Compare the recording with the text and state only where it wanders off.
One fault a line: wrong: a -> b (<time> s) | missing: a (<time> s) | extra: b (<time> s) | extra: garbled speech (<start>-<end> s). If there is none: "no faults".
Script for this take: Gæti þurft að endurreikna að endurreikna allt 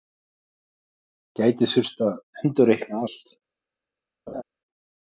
missing: að endurreikna (3.0 s)